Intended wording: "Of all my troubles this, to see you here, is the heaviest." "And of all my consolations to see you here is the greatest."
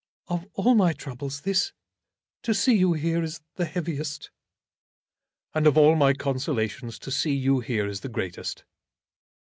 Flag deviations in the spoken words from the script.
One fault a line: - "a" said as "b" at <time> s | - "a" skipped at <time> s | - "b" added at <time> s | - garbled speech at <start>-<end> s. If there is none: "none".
none